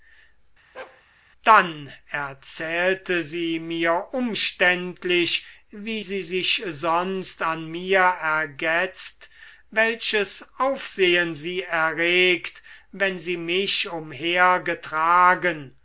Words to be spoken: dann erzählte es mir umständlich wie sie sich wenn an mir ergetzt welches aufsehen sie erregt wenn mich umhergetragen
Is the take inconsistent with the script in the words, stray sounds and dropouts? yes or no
yes